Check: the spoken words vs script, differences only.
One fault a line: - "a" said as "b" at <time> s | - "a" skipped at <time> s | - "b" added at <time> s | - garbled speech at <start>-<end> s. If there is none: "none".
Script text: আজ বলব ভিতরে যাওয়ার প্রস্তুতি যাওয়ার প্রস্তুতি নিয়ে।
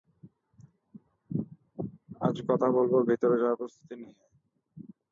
- "কথা" added at 2.5 s
- "যাওয়ার প্রস্তুতি" skipped at 3.9 s